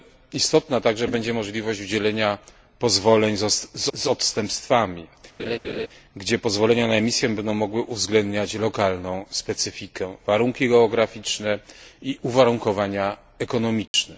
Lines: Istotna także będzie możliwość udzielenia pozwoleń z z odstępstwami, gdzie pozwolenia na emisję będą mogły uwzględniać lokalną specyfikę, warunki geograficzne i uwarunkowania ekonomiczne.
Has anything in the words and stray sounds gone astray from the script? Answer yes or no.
yes